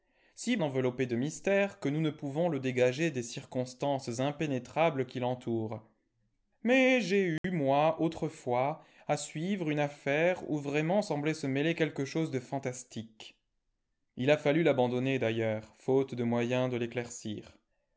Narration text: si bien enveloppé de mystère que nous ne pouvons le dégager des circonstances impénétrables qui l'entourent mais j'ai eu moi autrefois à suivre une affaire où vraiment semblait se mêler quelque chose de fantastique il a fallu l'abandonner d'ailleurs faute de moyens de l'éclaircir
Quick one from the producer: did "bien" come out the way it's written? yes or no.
no